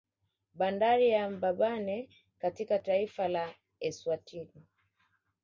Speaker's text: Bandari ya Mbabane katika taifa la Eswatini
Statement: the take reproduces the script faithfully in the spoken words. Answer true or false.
true